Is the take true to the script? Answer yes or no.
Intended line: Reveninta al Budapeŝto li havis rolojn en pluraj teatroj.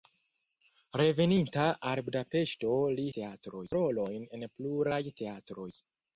no